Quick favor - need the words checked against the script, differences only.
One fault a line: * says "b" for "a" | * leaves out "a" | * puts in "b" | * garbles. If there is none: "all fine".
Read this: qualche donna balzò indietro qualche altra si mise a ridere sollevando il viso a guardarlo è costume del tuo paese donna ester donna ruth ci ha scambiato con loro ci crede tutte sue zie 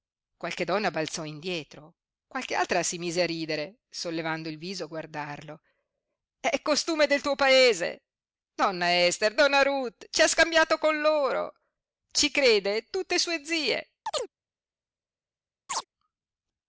all fine